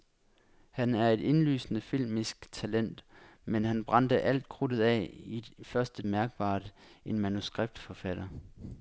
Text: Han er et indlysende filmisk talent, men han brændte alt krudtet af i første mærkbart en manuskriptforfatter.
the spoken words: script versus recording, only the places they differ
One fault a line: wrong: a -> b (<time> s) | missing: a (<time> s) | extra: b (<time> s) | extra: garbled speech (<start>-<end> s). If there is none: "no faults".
no faults